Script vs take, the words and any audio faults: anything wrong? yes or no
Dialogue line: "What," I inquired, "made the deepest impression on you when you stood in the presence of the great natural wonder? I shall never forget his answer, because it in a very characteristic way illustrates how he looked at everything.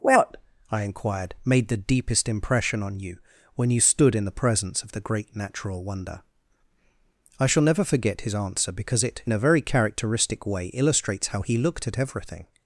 no